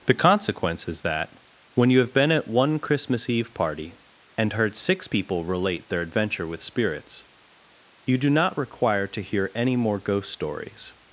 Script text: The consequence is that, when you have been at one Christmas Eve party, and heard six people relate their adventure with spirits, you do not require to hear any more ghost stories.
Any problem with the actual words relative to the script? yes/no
no